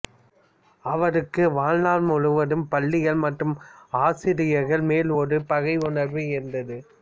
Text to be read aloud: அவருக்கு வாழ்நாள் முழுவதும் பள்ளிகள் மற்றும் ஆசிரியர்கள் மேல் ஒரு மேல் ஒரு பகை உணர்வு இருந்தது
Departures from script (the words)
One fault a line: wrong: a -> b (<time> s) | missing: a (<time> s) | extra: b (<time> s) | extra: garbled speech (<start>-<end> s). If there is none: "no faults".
missing: மேல் ஒரு (5.4 s)